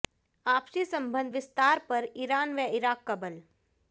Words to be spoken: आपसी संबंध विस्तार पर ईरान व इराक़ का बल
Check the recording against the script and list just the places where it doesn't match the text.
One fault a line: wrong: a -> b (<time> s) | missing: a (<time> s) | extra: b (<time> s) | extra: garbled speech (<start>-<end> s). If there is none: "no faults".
no faults